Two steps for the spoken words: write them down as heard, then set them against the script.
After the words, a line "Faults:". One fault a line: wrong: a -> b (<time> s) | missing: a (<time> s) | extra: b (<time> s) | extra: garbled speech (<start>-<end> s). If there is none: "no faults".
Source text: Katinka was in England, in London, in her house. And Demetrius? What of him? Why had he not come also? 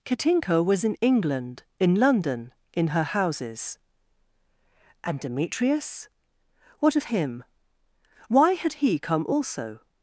Katinka was in England, in London, in her houses. And Demetrius? What of him? Why had he come also?
Faults:
wrong: house -> houses (3.0 s)
missing: not (9.0 s)